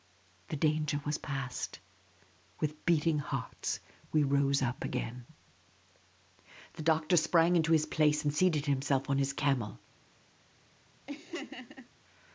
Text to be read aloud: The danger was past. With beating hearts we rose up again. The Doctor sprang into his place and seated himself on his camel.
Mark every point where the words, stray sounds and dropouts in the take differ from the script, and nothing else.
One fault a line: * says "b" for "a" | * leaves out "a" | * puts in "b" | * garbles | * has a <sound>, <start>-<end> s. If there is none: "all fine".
* has a laugh, 11.1-11.9 s